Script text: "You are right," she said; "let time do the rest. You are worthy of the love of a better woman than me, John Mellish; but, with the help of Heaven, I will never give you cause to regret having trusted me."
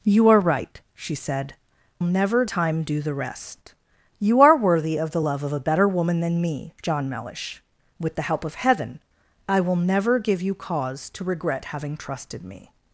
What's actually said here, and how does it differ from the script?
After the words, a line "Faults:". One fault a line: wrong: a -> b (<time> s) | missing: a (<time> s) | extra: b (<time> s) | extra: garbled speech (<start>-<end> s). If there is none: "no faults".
"You are right," she said; "never time do the rest. You are worthy of the love of a better woman than me, John Mellish; with the help of Heaven, I will never give you cause to regret having trusted me."
Faults:
wrong: let -> never (2.0 s)
missing: but (7.6 s)